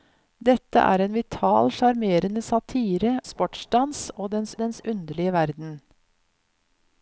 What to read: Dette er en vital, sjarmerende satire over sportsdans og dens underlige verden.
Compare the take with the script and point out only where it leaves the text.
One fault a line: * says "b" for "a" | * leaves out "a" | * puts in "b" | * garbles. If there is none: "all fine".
* leaves out "over"
* puts in "dens"